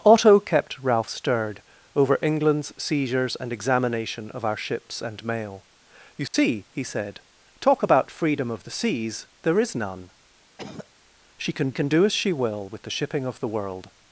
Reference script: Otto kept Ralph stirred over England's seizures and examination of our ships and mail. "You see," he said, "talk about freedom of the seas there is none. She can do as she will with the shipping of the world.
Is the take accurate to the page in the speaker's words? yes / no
no